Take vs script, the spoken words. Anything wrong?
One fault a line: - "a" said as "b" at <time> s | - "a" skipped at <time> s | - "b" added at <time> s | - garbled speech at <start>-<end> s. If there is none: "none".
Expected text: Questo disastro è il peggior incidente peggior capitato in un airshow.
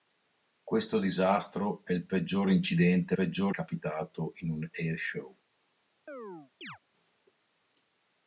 none